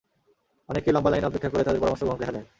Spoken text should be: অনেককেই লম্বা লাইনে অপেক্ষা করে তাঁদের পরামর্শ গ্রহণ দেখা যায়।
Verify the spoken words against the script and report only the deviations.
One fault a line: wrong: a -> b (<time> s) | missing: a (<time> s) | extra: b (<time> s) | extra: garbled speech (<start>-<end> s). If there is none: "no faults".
no faults